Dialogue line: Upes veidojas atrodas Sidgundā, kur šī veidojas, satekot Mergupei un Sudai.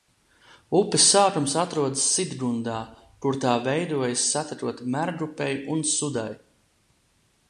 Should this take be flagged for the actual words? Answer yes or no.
yes